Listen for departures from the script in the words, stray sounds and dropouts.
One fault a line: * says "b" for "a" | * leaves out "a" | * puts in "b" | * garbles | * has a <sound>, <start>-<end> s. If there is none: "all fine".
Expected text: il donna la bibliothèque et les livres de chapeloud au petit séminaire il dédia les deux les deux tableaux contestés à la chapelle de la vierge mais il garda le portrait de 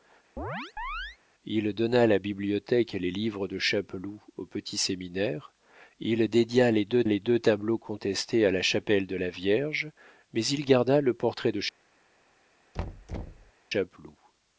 * has a chirp, 0.4-1.2 s
* has a thud, 12.7-13.5 s